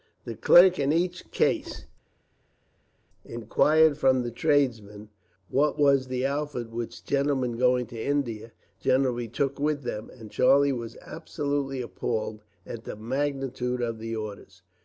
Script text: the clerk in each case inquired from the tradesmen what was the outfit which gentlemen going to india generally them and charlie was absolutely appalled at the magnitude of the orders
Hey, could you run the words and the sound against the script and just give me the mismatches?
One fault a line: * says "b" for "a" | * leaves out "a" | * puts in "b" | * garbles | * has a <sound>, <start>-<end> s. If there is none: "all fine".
* puts in "took with"